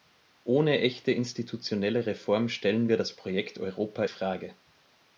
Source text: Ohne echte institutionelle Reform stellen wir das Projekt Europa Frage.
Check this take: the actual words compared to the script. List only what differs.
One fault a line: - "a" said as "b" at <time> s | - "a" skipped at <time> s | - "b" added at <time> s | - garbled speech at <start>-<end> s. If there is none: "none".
none